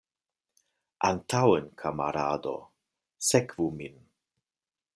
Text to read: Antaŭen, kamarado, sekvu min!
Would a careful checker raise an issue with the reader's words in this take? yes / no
no